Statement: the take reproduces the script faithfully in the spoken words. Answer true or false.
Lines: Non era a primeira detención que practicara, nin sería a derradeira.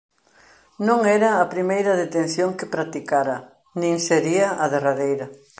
true